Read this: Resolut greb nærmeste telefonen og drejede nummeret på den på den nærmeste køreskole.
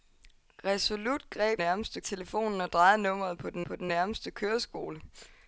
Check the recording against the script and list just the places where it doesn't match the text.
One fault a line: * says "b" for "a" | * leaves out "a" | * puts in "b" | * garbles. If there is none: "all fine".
all fine